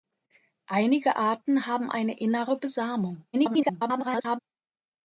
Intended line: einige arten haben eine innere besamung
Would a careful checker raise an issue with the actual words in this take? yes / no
yes